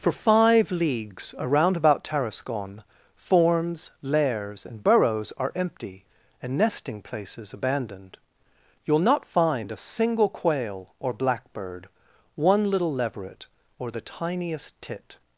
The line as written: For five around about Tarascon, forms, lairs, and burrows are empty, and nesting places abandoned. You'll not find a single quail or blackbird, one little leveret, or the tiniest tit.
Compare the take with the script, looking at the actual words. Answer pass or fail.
fail